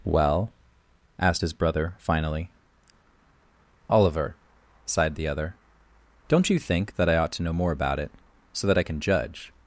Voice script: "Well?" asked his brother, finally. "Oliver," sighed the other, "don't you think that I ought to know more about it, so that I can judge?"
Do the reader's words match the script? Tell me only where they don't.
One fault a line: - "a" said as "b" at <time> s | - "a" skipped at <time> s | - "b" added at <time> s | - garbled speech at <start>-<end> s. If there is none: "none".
none